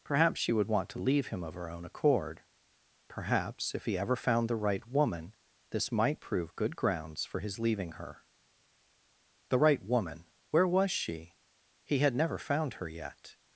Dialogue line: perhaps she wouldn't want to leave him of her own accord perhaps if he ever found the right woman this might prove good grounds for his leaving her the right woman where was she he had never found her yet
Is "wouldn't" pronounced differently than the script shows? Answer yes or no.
yes